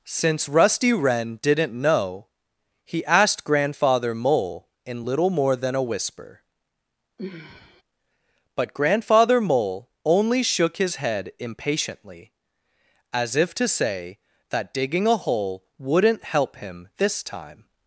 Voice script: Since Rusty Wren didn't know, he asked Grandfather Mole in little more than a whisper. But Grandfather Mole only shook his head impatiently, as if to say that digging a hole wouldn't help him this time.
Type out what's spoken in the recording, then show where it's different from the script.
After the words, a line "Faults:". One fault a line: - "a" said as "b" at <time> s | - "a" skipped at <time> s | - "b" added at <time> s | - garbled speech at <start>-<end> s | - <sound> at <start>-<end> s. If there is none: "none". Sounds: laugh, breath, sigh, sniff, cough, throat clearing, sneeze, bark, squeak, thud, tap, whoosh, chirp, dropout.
Since Rusty Wren didn't know, he asked Grandfather Mole in little more than a whisper. But Grandfather Mole only shook his head impatiently, as if to say that digging a hole wouldn't help him this time.
Faults:
- sigh at 7.2-7.8 s